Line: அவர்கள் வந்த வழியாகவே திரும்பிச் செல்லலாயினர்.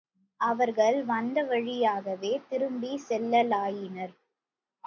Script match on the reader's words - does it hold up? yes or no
yes